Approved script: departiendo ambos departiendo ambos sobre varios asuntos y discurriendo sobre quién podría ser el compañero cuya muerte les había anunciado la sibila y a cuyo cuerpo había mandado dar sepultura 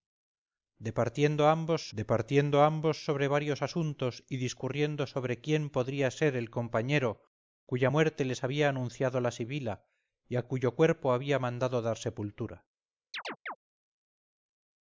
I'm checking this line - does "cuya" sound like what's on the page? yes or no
yes